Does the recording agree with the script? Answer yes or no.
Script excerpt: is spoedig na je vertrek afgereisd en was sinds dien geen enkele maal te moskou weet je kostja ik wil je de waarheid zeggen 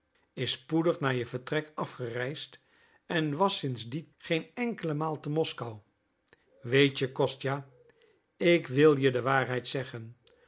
yes